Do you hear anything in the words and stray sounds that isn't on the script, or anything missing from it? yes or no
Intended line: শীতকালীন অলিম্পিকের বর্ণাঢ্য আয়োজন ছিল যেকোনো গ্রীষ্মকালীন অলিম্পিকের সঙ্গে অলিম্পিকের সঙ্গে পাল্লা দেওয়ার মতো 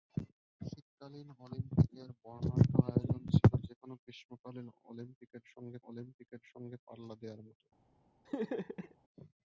yes